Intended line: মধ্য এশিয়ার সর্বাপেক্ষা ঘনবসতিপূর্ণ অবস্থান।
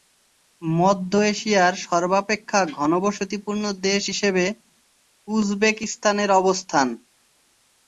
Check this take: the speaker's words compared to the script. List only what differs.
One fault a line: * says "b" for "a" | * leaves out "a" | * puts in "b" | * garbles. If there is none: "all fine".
* puts in "দেশ হিসেবে উজবেকিস্তানের"